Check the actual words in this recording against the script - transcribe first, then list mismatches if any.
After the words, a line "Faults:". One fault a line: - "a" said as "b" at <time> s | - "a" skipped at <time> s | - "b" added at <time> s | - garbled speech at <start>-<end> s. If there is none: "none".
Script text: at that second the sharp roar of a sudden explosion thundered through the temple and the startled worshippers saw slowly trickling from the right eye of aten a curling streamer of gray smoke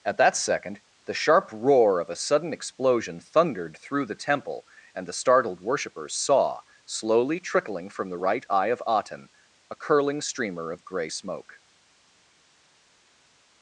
at that second the sharp roar of a sudden explosion thundered through the temple and the startled worshippers saw slowly trickling from the right eye of aten a curling streamer of gray smoke
Faults:
none